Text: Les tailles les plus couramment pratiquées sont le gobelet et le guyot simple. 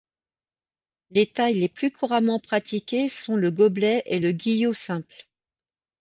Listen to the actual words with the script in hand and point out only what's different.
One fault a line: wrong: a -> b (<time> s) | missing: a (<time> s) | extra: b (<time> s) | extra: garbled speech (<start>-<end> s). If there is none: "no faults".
no faults